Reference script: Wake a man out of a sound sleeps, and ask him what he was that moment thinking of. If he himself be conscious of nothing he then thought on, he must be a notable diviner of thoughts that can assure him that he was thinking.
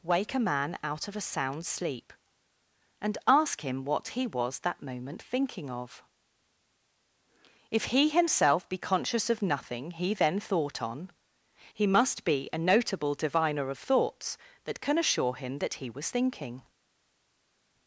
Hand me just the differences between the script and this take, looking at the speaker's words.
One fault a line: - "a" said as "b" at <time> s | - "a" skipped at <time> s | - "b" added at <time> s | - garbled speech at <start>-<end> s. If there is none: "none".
- "sleeps" said as "sleep" at 1.6 s